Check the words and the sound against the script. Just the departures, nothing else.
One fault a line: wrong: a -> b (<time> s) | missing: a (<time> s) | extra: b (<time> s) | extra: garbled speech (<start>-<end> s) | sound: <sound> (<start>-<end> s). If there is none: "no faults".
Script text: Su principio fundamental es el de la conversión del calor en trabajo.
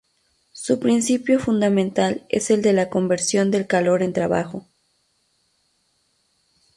no faults